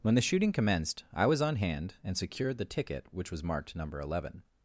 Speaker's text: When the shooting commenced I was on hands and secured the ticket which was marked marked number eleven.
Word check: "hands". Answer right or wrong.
wrong